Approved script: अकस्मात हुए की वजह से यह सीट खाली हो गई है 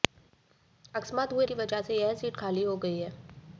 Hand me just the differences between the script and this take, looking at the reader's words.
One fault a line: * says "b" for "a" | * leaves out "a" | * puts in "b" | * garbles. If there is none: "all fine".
all fine